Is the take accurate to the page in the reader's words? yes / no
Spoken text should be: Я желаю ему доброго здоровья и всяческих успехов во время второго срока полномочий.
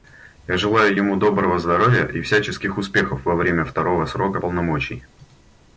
yes